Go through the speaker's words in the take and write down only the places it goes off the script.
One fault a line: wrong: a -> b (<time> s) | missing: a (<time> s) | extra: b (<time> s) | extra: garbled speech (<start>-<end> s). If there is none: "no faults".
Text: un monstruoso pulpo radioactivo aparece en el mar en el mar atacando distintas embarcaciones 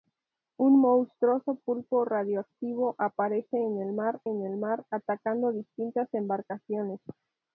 no faults